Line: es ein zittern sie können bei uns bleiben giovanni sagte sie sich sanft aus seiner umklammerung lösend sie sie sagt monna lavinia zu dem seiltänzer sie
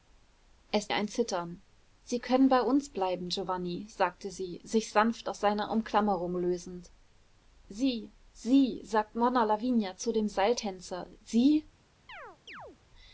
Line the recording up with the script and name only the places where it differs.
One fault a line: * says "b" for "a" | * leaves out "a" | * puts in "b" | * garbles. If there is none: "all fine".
all fine